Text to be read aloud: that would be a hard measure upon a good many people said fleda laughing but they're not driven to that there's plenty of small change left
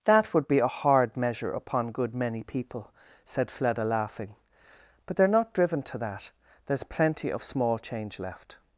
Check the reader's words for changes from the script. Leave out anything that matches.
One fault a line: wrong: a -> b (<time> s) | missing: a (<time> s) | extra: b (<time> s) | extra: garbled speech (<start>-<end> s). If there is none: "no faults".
missing: a (1.9 s)